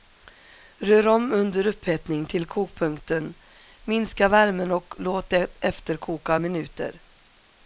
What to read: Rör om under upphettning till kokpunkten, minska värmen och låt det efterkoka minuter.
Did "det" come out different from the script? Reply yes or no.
no